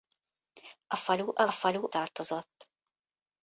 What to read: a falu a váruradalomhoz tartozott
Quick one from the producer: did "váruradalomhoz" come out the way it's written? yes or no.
no